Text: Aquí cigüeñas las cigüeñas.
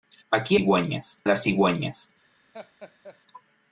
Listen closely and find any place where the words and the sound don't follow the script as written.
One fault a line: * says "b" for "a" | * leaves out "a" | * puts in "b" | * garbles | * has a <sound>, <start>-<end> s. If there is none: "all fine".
* has a laugh, 2.5-3.2 s